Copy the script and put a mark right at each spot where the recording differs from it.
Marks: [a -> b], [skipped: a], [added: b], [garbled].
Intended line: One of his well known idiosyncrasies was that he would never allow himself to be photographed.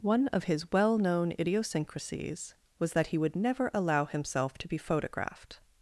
One of his well known idiosyncrasies was that he would never allow himself to be photographed.